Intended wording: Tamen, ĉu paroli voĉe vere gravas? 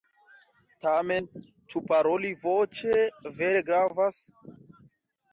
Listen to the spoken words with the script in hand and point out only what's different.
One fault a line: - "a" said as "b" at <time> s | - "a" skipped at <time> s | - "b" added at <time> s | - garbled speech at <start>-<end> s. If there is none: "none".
none